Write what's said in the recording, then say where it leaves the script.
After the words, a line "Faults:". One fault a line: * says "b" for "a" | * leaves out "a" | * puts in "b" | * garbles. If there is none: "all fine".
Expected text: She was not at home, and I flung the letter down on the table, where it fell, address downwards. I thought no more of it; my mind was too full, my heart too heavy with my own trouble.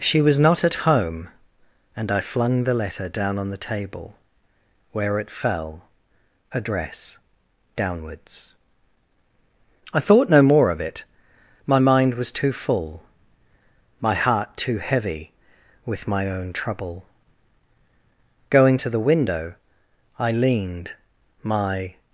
She was not at home, and I flung the letter down on the table, where it fell, address downwards. I thought no more of it; my mind was too full, my heart too heavy with my own trouble. Going to the window, I leaned my
Faults:
* puts in "Going to the window I leaned my"